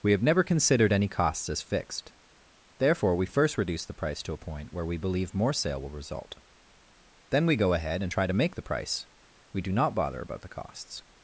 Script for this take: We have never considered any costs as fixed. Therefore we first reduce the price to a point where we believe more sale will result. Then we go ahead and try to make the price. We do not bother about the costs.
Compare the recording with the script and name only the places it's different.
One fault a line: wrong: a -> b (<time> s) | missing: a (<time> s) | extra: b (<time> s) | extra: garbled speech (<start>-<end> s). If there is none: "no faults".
no faults